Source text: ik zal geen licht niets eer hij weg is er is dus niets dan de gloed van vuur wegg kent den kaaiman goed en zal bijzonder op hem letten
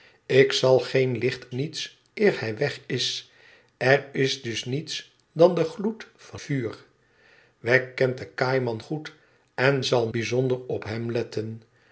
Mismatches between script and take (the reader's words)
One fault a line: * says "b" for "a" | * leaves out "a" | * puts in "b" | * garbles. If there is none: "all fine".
all fine